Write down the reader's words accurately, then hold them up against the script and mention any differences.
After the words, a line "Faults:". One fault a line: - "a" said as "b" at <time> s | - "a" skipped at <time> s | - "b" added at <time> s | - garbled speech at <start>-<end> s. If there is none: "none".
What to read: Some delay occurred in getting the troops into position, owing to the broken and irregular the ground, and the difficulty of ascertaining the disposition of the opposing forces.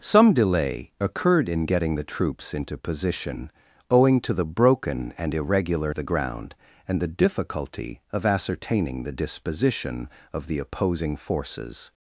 Some delay occurred in getting the troops into position, owing to the broken and irregular the ground, and the difficulty of ascertaining the disposition of the opposing forces.
Faults:
none